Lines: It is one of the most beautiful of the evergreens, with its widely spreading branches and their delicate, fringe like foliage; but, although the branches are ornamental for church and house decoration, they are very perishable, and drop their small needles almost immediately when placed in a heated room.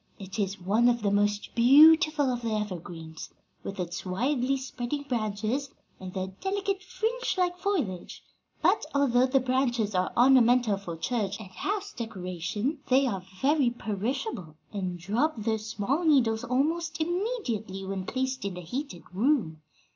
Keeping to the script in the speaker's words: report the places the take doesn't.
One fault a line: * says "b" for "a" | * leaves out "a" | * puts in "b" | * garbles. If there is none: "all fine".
all fine